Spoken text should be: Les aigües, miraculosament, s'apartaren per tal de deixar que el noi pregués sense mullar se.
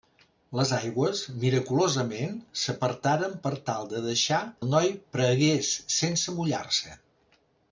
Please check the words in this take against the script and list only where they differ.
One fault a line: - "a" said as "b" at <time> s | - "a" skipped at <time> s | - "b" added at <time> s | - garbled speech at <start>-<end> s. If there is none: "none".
- "que" skipped at 4.4 s